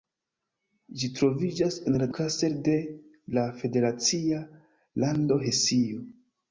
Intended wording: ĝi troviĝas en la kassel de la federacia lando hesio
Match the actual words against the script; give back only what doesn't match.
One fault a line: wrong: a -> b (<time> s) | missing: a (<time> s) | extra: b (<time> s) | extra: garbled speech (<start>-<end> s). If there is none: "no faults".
no faults